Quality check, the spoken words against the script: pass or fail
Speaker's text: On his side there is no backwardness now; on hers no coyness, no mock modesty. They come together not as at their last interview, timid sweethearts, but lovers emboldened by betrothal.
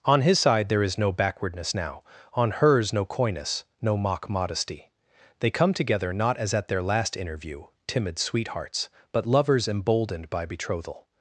pass